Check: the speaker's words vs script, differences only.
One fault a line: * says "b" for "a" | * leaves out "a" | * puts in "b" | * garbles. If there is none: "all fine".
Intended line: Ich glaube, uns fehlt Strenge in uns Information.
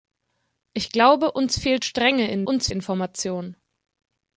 all fine